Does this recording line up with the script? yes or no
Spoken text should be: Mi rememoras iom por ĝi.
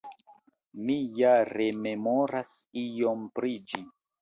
no